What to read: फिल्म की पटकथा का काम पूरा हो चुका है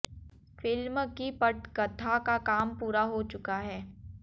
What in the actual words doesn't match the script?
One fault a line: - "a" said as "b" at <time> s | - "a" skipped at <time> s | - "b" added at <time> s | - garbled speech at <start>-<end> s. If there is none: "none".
none